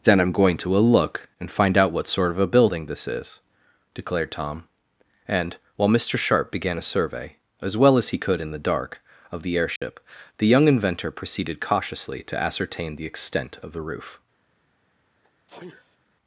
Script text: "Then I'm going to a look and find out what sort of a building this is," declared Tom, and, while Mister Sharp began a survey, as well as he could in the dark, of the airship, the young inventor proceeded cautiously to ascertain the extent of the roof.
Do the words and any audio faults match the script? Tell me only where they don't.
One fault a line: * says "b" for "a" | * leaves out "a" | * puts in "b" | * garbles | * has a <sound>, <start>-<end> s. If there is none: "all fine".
* has a dropout, 9.8-9.8 s
* has a sneeze, 15.2-16.0 s